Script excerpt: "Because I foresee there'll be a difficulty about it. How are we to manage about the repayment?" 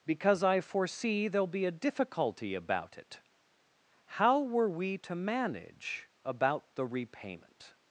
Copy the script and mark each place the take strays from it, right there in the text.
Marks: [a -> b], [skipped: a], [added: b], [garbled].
"Because I foresee there'll be a difficulty about it. How [are -> were] we to manage about the repayment?"